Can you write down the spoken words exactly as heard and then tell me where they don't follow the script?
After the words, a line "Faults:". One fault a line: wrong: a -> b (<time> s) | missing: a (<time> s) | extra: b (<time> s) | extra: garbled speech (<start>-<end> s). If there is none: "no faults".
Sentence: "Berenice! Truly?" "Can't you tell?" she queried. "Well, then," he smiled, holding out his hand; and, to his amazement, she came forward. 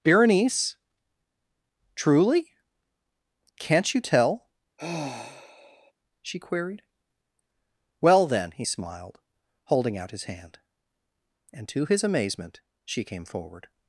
"Berenice! Truly?" "Can't you tell?" she queried. "Well, then," he smiled, holding out his hand; and, to his amazement, she came forward.
Faults:
no faults